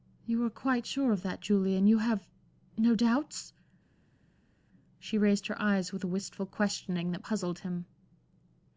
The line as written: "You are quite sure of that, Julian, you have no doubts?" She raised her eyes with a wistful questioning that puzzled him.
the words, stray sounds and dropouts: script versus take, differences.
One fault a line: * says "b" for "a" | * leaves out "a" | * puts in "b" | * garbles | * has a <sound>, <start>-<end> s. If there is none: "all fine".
all fine